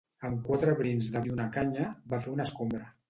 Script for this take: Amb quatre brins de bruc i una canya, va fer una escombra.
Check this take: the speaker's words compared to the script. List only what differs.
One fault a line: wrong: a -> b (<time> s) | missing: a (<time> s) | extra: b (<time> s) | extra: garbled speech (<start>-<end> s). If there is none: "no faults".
missing: bruc (1.2 s)